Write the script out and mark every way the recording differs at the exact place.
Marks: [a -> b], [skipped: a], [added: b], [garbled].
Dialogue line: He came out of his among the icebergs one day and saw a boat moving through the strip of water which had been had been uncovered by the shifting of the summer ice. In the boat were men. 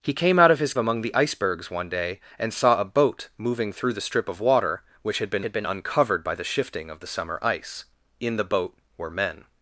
He came out of his among the icebergs one day and saw a boat moving through the strip of water which had been had been uncovered by the shifting of the summer ice. In the boat were men.